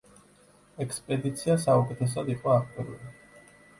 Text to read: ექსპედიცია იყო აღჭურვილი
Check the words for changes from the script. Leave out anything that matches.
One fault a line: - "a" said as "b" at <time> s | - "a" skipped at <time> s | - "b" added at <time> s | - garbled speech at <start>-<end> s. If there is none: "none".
- "საუკეთესოდ" added at 1.7 s